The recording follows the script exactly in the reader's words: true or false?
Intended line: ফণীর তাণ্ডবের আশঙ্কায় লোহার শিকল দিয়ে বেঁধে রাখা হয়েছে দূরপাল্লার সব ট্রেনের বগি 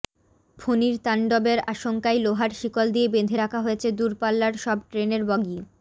true